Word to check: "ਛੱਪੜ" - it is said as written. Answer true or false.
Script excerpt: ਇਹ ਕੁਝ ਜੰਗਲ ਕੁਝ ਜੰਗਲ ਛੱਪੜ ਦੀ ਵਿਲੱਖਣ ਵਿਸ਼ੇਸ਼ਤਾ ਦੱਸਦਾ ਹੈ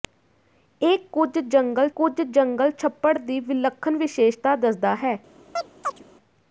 true